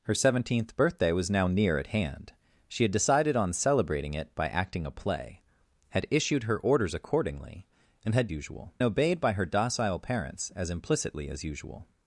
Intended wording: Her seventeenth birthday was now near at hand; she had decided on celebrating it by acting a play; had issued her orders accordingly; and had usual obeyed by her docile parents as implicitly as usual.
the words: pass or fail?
pass